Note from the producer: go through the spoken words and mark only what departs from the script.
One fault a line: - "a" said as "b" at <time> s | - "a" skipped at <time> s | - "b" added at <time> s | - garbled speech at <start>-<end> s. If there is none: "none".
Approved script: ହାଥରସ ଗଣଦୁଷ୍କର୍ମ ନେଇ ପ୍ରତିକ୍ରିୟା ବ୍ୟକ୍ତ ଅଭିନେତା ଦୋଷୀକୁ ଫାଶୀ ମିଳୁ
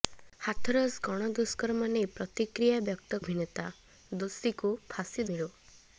none